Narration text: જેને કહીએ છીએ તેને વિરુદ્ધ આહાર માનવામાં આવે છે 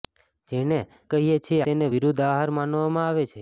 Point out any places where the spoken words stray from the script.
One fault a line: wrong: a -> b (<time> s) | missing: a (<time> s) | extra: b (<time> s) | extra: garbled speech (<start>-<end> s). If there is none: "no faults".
no faults